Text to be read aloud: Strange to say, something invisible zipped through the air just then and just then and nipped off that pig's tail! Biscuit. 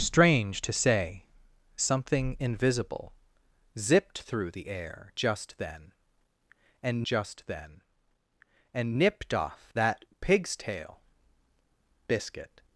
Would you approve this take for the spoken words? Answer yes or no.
yes